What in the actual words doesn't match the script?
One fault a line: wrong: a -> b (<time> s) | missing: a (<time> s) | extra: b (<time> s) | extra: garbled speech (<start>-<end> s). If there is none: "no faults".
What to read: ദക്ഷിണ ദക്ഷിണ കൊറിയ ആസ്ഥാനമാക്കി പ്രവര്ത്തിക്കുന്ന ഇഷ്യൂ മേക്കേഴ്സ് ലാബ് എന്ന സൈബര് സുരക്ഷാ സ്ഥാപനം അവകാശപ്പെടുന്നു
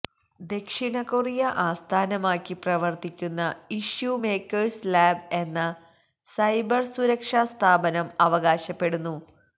missing: ദക്ഷിണ (1.0 s)